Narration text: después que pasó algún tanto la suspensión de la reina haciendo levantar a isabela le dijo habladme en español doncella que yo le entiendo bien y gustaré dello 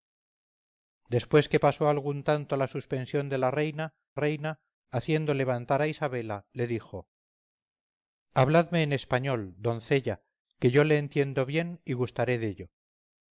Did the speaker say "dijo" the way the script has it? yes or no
yes